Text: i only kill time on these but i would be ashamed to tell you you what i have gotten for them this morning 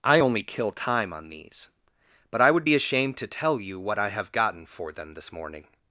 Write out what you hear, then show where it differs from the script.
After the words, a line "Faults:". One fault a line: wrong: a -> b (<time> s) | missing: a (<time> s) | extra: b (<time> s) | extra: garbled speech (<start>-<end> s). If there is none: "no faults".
i only kill time on these but i would be ashamed to tell you what i have gotten for them this morning
Faults:
missing: you (3.8 s)